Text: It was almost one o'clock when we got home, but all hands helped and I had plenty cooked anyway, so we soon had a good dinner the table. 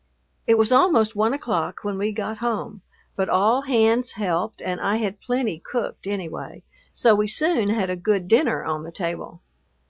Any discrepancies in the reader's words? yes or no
yes